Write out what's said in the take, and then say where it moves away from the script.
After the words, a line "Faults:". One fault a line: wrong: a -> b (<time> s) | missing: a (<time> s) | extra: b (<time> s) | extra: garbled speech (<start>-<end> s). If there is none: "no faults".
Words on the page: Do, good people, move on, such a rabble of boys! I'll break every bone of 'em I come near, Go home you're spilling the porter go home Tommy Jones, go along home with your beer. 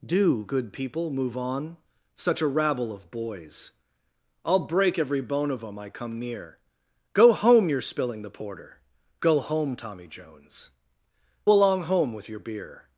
Do, good people, move on, such a rabble of boys! I'll break every bone of 'em I come near, Go home you're spilling the porter go home Tommy Jones, along home with your beer.
Faults:
missing: go (10.7 s)